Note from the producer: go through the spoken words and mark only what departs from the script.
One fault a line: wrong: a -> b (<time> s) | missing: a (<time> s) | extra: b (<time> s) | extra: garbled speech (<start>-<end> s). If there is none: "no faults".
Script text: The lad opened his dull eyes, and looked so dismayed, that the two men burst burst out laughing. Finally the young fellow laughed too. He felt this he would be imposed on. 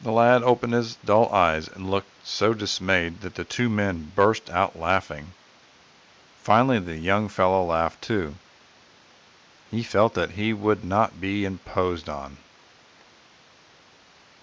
missing: burst (4.5 s)
wrong: this -> that (10.1 s)
extra: not (10.9 s)